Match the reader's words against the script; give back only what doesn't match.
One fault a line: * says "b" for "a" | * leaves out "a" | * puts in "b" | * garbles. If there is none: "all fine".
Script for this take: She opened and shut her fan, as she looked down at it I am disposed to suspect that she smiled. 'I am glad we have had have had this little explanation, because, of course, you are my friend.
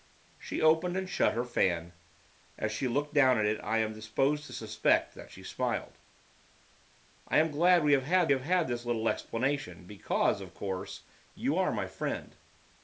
all fine